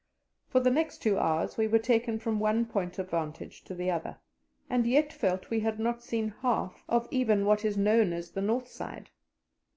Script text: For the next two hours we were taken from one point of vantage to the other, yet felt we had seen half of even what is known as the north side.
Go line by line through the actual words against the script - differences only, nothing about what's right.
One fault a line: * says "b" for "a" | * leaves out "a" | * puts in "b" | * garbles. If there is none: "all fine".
* puts in "and"
* puts in "not"